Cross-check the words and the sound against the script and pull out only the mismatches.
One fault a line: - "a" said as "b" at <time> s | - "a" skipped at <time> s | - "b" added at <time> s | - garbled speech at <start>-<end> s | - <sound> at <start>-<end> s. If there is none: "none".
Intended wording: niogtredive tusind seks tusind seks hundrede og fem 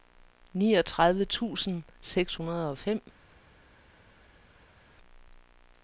- "tusind seks" skipped at 2.4 s